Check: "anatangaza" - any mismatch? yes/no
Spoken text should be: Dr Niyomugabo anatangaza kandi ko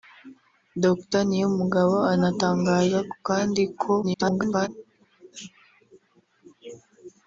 no